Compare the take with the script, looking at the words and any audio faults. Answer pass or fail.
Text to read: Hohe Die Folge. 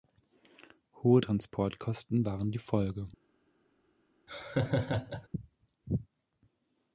fail